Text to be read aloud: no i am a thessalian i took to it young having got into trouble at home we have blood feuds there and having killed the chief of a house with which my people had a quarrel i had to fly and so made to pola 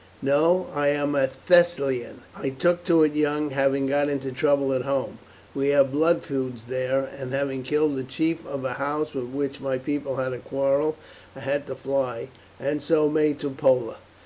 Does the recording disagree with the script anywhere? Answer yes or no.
no